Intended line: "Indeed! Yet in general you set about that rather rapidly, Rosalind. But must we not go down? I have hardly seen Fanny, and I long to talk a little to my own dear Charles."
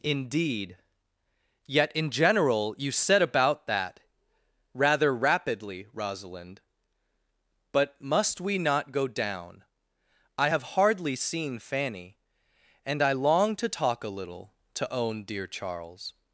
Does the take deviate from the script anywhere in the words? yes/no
yes